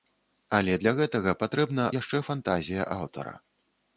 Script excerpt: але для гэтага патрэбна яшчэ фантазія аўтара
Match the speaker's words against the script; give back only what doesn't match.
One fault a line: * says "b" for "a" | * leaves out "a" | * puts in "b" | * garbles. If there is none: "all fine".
all fine